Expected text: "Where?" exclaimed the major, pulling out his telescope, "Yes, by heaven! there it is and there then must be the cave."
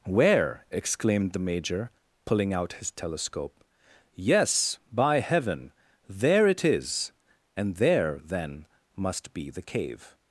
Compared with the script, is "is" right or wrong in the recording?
right